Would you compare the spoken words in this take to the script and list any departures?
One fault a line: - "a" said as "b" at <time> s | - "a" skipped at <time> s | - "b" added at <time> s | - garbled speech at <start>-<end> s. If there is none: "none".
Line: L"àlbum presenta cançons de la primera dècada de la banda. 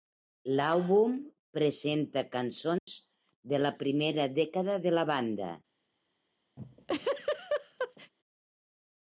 none